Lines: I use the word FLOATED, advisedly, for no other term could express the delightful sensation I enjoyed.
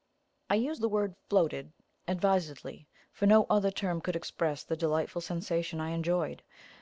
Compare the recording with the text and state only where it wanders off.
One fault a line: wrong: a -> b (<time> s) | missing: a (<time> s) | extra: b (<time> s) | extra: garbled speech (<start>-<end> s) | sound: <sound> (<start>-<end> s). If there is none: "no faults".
no faults